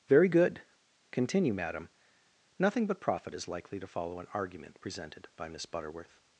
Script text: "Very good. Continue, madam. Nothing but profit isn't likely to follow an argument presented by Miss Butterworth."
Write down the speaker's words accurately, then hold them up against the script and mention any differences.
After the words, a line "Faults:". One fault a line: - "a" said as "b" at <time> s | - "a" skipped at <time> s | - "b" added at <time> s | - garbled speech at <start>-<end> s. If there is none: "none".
"Very good. Continue, madam. Nothing but profit is likely to follow an argument presented by Miss Butterworth."
Faults:
- "isn't" said as "is" at 3.3 s